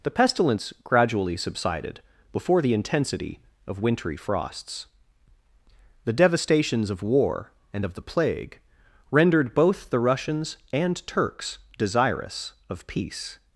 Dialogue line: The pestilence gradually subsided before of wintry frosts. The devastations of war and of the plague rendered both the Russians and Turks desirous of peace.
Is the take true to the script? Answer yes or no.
no